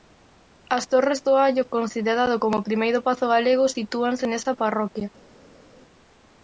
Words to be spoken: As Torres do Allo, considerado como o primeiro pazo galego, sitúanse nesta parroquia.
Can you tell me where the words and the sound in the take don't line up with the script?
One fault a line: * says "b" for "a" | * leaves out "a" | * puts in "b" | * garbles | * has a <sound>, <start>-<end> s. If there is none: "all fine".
all fine